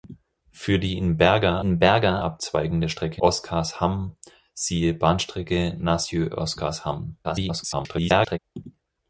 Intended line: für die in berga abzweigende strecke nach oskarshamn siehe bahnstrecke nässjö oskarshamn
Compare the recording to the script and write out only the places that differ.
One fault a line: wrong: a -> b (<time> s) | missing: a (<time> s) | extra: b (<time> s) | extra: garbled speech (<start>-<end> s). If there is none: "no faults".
extra: in berga (1.6 s)
missing: nach (3.2 s)
extra: garbled speech (7.2-8.4 s)